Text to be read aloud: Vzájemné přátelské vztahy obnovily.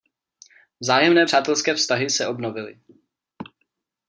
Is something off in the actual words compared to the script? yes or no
yes